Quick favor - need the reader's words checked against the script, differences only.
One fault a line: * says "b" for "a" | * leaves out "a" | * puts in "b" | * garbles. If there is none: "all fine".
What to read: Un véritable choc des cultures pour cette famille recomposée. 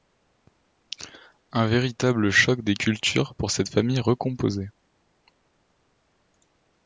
all fine